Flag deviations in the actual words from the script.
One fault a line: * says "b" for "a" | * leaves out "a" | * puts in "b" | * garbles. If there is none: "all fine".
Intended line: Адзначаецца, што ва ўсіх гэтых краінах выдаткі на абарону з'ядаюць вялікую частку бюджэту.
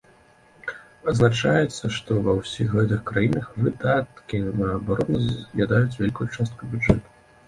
all fine